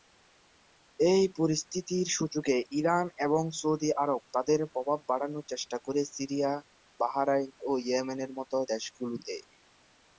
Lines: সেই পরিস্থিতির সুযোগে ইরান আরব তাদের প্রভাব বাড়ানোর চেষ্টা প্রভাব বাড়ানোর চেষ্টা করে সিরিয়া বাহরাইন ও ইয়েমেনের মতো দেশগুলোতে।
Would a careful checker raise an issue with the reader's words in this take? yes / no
yes